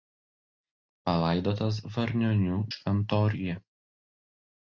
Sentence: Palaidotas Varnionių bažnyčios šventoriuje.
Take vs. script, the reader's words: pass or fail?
fail